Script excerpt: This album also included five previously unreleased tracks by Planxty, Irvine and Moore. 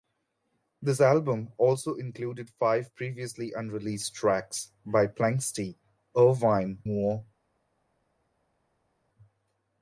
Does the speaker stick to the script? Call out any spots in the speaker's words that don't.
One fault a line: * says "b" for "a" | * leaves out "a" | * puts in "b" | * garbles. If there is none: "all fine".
* leaves out "and"